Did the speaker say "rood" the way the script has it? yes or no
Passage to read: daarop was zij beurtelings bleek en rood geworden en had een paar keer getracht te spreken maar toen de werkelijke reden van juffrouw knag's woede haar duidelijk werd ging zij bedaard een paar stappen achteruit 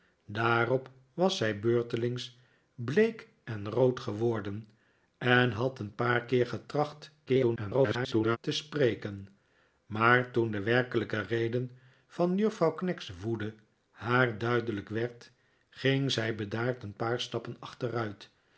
yes